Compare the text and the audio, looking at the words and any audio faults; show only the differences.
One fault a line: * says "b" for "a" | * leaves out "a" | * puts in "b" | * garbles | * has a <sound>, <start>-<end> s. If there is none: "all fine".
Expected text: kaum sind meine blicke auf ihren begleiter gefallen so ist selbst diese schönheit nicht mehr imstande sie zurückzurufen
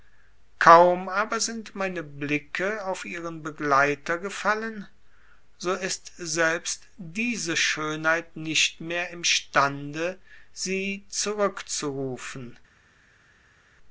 * puts in "aber"